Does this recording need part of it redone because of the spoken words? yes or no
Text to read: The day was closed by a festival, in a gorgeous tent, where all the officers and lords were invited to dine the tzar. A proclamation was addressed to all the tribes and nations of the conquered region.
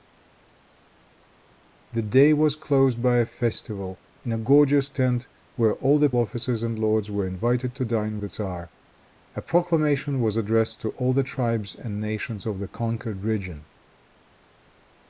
no